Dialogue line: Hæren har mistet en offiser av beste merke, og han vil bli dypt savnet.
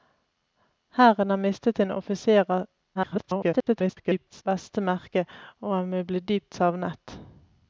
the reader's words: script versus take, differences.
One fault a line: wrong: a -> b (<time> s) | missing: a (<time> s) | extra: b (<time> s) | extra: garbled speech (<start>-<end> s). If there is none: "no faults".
extra: garbled speech (2.9-4.4 s)